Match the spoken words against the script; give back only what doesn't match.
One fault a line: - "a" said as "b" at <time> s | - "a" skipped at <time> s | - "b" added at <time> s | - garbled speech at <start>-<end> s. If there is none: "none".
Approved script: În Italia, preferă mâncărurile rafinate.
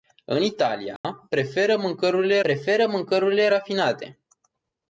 - "preferă mâncărurile" added at 2.4 s